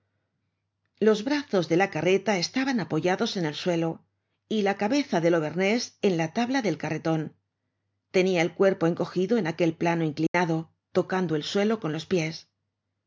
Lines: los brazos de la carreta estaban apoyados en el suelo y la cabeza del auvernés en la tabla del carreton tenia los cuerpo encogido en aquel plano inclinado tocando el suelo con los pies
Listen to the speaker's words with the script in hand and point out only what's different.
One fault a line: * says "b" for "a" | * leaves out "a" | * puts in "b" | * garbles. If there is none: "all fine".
* says "el" for "los"